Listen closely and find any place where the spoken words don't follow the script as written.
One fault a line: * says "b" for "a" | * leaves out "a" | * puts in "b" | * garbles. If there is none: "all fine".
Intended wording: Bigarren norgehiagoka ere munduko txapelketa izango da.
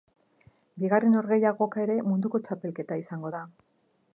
all fine